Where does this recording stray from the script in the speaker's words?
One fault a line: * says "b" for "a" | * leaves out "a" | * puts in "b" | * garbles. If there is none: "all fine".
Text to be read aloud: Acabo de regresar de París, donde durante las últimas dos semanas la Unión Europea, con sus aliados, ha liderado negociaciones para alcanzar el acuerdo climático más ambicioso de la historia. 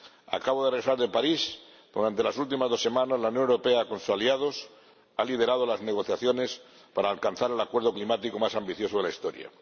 * puts in "las"